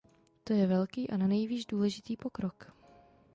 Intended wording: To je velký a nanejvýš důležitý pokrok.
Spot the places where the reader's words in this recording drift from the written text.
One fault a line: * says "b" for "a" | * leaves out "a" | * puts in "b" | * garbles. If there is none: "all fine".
all fine